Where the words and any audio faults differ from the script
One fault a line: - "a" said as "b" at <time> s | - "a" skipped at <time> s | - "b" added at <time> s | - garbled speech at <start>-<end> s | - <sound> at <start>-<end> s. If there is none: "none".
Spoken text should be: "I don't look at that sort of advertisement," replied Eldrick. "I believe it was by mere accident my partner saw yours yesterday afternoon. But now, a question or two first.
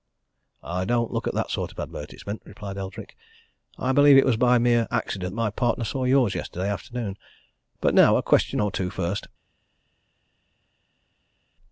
none